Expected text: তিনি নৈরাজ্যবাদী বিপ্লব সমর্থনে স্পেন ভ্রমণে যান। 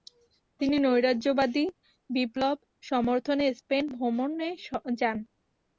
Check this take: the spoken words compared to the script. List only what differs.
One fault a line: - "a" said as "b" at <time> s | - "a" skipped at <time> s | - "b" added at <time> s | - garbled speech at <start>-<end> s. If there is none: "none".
none